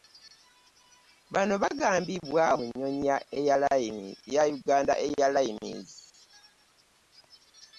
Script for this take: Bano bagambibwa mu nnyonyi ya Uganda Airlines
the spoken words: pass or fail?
pass